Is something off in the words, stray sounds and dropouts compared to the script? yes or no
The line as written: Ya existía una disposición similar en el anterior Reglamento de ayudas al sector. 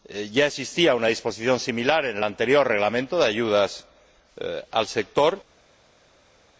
no